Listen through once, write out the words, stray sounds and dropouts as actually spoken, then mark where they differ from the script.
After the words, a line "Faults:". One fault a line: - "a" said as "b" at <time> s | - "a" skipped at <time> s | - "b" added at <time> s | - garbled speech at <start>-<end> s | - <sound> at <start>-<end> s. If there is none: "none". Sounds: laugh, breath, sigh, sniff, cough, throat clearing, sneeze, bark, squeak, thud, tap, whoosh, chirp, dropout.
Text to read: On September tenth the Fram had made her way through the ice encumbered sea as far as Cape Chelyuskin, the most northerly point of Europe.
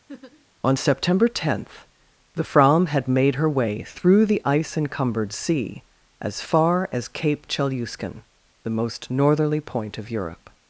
On September tenth the Fram had made her way through the ice encumbered sea as far as Cape Chelyuskin, the most northerly point of Europe.
Faults:
- laugh at 0.1-0.5 s